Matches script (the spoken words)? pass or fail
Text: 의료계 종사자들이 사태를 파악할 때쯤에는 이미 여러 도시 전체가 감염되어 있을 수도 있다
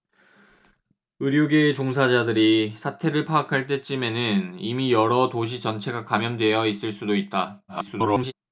fail